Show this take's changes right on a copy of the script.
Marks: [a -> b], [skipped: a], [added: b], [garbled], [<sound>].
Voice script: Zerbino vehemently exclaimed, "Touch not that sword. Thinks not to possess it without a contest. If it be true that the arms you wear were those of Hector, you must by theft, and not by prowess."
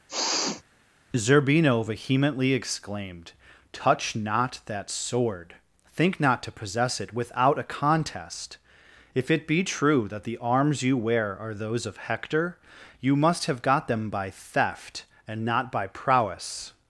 [sniff] Zerbino vehemently exclaimed, "Touch not that sword. [Thinks -> Think] not to possess it without a contest. If it be true that the arms you wear [were -> are] those of Hector, you must [added: have got them] by theft, and not by prowess."